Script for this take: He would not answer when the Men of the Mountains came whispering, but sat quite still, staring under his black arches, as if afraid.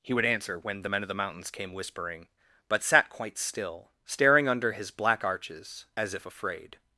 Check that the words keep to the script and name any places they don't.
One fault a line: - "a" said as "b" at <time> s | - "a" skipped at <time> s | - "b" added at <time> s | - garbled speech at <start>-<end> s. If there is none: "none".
- "not" skipped at 0.2 s